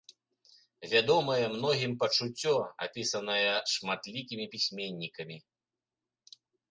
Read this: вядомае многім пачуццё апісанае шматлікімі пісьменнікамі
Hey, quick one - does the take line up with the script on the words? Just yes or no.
yes